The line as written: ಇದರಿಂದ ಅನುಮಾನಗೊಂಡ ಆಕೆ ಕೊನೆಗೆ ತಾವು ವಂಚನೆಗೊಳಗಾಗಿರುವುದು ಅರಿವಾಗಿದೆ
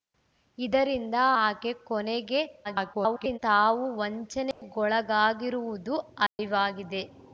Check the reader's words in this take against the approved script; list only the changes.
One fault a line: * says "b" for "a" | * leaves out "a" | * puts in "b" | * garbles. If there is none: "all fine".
* leaves out "ಅನುಮಾನಗೊಂಡ"
* garbles